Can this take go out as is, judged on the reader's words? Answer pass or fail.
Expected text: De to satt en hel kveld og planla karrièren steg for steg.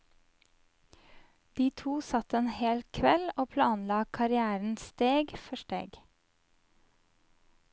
pass